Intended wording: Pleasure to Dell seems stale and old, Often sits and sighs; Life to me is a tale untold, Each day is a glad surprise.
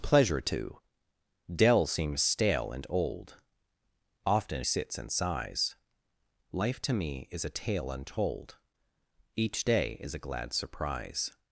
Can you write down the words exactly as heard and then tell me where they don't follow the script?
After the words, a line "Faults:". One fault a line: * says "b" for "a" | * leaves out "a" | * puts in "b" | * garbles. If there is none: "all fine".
Pleasure to Dell seems stale and old, Often sits and sighs; Life to me is a tale untold, Each day is a glad surprise.
Faults:
all fine